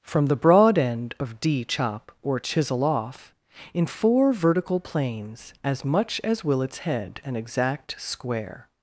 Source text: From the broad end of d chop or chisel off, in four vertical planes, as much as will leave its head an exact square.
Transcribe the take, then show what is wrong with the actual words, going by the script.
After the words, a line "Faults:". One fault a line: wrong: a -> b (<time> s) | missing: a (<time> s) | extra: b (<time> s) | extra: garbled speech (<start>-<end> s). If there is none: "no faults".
From the broad end of d chop or chisel off, in four vertical planes, as much as will its head an exact square.
Faults:
missing: leave (6.6 s)